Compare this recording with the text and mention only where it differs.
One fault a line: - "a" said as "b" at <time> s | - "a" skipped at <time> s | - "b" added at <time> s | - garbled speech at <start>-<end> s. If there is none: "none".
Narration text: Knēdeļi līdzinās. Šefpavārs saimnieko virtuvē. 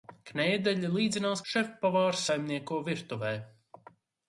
none